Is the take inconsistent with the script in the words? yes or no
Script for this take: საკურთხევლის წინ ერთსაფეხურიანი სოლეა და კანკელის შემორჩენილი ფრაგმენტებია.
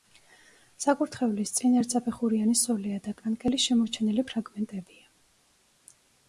no